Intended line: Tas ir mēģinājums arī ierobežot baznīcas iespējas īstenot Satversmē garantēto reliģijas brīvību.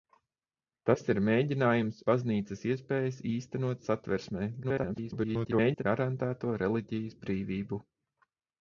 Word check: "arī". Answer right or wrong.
wrong